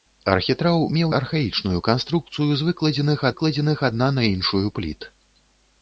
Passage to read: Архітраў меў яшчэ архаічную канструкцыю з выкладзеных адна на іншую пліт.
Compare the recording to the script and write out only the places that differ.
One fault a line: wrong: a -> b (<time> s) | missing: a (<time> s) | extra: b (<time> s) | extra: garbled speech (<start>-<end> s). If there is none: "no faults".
missing: яшчэ (1.1 s)
extra: выкладзеных (3.3 s)